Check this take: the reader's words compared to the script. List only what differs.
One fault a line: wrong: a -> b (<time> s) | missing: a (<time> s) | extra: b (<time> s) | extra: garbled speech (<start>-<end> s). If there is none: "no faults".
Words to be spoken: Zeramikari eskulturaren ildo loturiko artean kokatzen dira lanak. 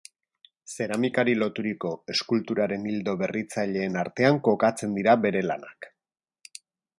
extra: loturiko (1.4 s)
wrong: loturiko -> berritzaileen (3.2 s)
extra: bere (5.3 s)